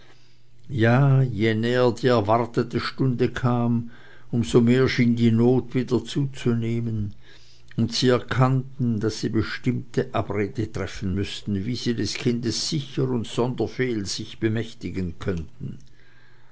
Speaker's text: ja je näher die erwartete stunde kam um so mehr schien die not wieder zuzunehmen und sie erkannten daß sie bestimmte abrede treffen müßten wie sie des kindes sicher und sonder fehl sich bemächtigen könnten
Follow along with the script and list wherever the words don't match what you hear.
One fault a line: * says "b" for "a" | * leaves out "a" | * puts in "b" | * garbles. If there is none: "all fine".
all fine